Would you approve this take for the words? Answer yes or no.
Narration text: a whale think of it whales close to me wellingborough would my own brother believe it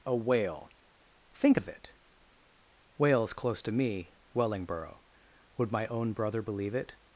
yes